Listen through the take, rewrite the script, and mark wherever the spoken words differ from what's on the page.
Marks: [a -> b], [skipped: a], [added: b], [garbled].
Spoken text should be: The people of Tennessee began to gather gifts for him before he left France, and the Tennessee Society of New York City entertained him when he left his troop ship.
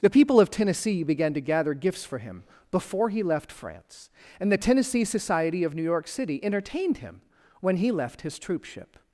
The people of Tennessee began to gather gifts for him before he left France, and the Tennessee Society of New York City entertained him when he left his troop ship.